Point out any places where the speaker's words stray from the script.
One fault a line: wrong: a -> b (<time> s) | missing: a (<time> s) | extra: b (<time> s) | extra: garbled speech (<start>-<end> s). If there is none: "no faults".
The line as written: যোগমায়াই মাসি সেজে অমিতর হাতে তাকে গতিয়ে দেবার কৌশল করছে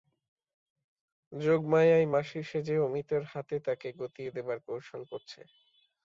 no faults